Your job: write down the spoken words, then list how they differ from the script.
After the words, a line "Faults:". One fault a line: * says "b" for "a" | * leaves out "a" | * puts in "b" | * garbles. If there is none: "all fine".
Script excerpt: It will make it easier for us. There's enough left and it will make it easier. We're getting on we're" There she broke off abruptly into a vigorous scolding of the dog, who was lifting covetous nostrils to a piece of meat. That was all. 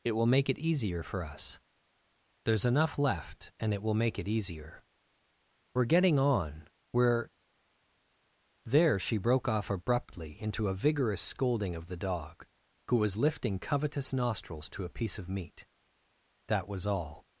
It will make it easier for us. There's enough left and it will make it easier. We're getting on we're" There she broke off abruptly into a vigorous scolding of the dog, who was lifting covetous nostrils to a piece of meat. That was all.
Faults:
all fine